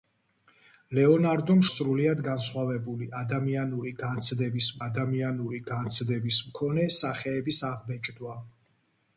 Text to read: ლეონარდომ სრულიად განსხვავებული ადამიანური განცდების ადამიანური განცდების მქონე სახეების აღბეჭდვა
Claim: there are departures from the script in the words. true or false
false